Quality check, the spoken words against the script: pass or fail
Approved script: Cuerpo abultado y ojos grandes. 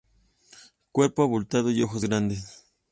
pass